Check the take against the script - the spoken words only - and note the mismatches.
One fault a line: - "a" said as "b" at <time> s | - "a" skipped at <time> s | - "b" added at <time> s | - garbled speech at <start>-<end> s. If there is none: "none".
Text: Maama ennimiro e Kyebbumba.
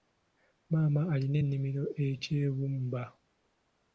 - "alina" added at 1.1 s